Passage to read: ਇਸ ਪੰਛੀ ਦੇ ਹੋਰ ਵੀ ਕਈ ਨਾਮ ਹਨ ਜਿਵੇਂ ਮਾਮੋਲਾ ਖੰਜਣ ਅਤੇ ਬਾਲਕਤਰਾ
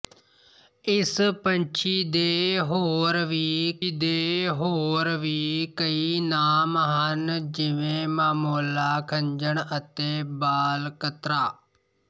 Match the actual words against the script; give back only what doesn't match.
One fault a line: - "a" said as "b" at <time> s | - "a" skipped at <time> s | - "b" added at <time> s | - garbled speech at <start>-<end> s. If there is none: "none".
- "ਦੇ ਹੋਰ ਵੀ" added at 3.9 s